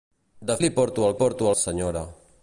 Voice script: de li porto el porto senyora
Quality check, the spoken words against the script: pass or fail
pass